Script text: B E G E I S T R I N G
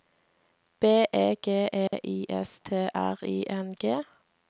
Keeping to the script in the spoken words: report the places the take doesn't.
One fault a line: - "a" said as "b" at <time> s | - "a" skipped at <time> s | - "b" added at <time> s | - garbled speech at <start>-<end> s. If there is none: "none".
none